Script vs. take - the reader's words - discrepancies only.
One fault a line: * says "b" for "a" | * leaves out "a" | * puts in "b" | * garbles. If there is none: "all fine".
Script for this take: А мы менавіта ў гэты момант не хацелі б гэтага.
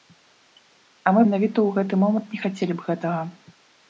all fine